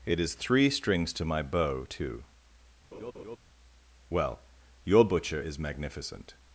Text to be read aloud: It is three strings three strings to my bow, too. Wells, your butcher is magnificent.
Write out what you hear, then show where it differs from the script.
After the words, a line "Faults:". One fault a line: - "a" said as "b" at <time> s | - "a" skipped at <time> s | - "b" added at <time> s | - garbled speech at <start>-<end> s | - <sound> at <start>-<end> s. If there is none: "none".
It is three strings to my bow, too. Well, your butcher is magnificent.
Faults:
- "three strings" skipped at 1.1 s
- laugh at 2.9-3.4 s
- "Wells" said as "Well" at 4.1 s